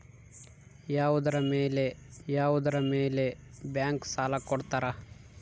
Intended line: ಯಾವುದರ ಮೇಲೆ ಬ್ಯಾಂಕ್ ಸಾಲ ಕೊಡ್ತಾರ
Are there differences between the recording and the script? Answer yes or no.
yes